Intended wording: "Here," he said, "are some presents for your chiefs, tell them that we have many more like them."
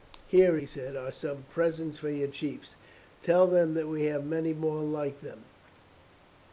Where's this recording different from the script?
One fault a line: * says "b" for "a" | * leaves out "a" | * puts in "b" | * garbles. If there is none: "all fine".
all fine